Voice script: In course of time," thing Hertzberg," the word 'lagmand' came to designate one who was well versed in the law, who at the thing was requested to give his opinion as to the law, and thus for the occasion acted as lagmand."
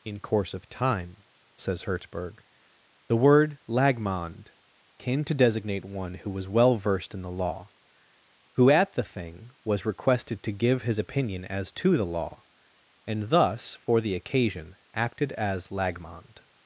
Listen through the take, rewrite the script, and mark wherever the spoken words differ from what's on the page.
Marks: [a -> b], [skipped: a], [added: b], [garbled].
In course of time," [thing -> says] Hertzberg," the word 'lagmand' came to designate one who was well versed in the law, who at the thing was requested to give his opinion as to the law, and thus for the occasion acted as lagmand."